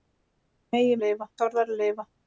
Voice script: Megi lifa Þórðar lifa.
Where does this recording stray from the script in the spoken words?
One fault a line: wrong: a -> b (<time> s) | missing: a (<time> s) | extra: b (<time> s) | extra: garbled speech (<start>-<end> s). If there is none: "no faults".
no faults